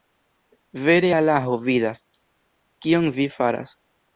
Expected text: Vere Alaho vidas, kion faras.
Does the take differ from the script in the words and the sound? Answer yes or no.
yes